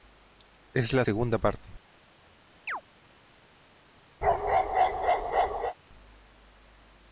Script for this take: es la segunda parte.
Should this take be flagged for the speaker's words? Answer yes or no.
no